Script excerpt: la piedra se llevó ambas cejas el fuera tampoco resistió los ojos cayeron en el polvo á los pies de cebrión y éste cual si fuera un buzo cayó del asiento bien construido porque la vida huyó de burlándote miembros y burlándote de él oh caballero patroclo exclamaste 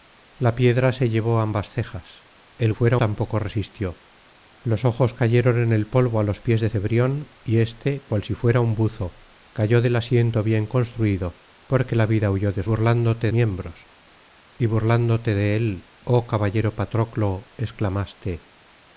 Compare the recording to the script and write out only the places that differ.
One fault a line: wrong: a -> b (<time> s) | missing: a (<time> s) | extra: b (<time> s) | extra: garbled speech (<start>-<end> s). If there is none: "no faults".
no faults